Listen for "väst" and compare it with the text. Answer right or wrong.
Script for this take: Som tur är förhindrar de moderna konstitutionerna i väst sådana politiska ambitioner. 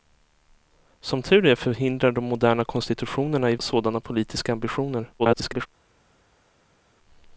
wrong